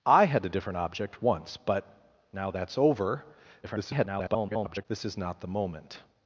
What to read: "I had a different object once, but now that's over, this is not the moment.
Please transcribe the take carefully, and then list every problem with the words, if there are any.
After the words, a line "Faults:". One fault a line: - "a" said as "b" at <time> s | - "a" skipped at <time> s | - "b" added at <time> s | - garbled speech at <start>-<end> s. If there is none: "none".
"I had a different object once, but now that's over, [garbled] this is not the moment.
Faults:
- garbled speech at 3.6-4.9 s